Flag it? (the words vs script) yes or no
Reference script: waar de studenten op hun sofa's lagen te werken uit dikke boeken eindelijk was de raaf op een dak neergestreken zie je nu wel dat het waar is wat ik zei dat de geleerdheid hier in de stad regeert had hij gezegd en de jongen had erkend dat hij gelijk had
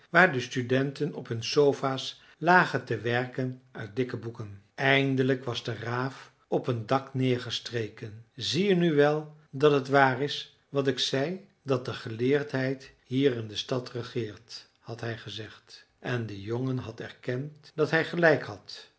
no